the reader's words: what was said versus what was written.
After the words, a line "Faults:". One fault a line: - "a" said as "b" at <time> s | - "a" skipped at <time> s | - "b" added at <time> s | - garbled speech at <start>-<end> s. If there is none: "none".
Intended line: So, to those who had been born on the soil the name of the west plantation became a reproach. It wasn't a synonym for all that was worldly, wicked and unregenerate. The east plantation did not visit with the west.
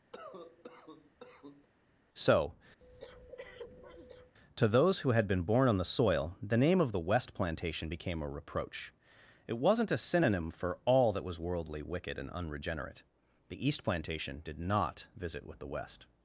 So, to those who had been born on the soil the name of the west plantation became a reproach. It wasn't a synonym for all that was worldly, wicked and unregenerate. The east plantation did not visit with the west.
Faults:
none